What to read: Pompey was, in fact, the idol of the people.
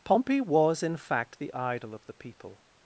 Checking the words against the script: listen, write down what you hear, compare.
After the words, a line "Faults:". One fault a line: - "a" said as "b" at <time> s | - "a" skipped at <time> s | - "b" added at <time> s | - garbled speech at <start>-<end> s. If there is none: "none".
Pompey was, in fact, the idol of the people.
Faults:
none